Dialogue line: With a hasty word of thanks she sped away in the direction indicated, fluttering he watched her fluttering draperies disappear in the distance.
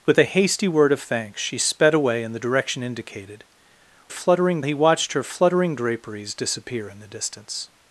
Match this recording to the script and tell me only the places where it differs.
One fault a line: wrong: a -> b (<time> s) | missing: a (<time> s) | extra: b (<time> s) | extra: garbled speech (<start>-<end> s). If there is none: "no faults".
no faults